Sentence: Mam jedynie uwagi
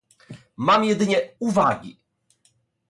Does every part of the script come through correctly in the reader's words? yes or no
yes